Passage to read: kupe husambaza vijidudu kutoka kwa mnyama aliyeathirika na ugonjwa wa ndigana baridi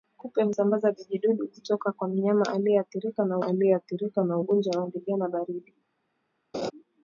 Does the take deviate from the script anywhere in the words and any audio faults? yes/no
yes